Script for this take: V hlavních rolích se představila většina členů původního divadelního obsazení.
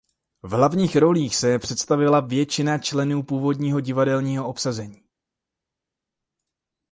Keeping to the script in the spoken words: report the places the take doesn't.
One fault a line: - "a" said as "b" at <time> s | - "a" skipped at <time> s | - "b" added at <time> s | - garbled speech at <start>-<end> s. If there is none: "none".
none